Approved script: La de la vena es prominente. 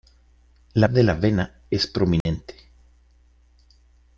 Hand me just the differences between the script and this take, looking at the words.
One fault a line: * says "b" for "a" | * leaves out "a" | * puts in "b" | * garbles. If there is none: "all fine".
all fine